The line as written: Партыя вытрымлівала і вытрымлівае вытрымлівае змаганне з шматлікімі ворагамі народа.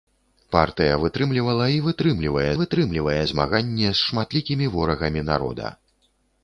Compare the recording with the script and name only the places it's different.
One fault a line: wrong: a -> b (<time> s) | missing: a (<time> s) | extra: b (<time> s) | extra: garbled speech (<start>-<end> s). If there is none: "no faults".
no faults